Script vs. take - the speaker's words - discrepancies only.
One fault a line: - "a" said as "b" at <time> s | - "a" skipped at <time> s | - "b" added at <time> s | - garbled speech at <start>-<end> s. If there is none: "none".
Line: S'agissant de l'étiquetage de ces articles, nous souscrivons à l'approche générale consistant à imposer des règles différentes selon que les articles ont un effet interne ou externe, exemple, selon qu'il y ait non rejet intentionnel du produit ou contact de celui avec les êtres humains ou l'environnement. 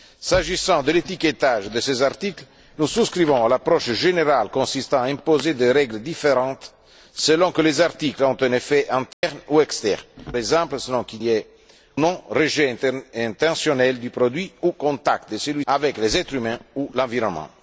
none